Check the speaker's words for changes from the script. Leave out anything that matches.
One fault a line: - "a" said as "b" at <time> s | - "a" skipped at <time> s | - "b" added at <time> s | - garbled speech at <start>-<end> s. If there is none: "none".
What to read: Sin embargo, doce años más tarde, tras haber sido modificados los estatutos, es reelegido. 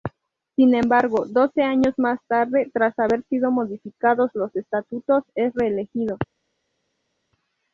none